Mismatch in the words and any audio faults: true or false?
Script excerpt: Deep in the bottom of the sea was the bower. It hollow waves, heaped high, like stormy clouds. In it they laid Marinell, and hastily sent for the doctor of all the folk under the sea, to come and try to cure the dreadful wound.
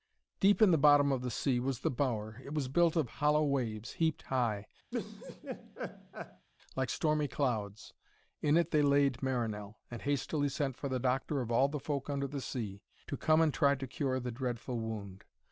true